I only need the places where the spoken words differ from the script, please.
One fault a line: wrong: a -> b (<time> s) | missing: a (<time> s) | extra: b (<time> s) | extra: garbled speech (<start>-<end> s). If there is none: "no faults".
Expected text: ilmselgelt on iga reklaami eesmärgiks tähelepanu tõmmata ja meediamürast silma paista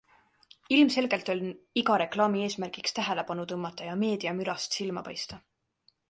no faults